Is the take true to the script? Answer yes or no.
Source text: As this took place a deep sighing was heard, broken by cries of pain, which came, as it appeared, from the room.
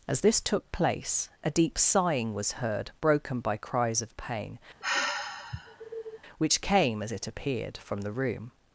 yes